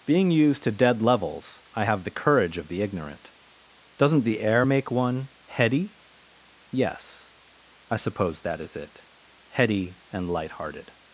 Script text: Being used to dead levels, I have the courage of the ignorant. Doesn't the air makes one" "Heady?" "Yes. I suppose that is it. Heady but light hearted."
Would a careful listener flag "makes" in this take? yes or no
yes